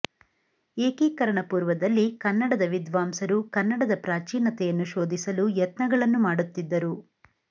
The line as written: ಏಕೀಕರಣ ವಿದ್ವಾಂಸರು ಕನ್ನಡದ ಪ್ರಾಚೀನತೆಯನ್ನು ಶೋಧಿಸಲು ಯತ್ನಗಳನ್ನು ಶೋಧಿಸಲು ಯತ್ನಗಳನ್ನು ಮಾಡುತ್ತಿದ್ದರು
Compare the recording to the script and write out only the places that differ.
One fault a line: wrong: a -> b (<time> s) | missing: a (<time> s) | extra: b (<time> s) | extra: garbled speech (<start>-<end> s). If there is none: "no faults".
extra: ಪೂರ್ವದಲ್ಲಿ ಕನ್ನಡದ (1.4 s)
missing: ಶೋಧಿಸಲು ಯತ್ನಗಳನ್ನು (6.2 s)